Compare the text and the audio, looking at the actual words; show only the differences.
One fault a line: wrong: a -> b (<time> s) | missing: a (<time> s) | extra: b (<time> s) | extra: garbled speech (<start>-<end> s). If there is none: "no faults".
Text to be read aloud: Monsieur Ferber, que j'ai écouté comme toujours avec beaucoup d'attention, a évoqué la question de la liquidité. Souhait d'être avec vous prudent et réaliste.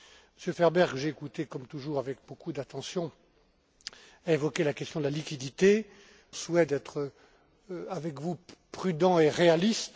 no faults